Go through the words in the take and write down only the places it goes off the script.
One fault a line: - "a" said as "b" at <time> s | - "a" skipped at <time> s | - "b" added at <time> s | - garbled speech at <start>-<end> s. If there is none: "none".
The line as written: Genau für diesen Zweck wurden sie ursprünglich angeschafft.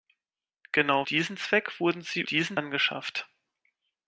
- "für" skipped at 1.1 s
- "ursprünglich" said as "diesen" at 2.2 s